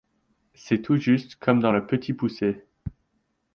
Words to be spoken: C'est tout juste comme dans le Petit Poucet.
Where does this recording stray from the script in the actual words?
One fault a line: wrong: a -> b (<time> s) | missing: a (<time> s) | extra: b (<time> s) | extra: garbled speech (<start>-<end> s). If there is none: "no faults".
no faults